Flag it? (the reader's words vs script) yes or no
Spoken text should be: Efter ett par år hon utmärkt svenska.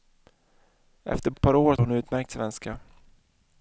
no